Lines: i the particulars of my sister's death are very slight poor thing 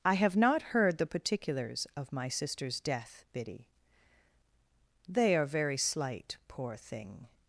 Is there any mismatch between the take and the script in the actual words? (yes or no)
yes